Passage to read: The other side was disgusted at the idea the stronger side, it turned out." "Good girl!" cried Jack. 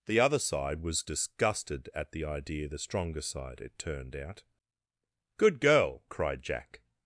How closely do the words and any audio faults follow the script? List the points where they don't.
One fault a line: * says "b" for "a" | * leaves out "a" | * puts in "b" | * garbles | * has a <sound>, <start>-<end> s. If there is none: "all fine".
all fine